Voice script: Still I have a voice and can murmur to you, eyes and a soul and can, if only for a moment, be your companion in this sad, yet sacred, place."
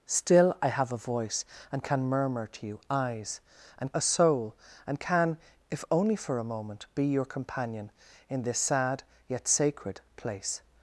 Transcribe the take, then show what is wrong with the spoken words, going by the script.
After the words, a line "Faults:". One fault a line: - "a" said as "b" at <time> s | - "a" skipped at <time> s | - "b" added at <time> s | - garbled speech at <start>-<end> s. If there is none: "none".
Still I have a voice and can murmur to you, eyes and a soul and can, if only for a moment, be your companion in this sad, yet sacred, place."
Faults:
none